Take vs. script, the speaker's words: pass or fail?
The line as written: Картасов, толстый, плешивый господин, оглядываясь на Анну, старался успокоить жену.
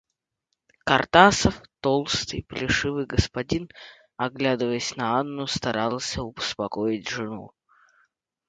pass